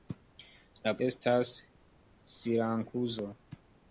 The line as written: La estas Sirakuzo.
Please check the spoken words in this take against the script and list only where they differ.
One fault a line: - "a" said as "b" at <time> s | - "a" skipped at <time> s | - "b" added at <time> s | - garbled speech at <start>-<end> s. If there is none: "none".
none